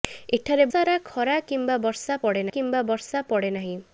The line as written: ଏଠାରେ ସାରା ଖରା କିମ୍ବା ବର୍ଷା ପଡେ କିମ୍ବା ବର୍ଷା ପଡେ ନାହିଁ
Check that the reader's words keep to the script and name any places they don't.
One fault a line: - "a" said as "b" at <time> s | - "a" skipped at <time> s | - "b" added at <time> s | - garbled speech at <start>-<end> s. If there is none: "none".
none